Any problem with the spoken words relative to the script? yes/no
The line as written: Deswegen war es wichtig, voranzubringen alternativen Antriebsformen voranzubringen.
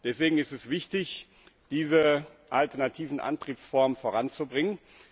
yes